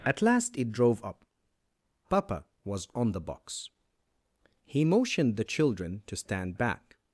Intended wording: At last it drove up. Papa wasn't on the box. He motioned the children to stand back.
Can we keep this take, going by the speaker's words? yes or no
no